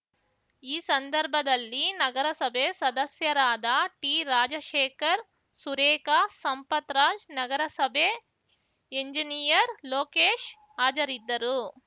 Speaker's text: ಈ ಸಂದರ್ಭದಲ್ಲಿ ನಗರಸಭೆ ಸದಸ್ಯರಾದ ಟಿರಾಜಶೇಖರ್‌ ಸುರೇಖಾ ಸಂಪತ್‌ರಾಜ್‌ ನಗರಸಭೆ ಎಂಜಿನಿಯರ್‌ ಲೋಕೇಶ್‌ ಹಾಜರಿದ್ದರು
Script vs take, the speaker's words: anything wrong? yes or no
no